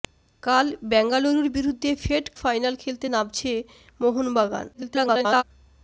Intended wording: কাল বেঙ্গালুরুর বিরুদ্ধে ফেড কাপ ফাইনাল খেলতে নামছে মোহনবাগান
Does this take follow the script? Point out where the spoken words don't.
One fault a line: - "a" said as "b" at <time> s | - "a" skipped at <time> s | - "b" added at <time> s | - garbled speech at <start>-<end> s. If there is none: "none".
- "কাপ" skipped at 2.2 s
- garbled speech at 4.7-5.4 s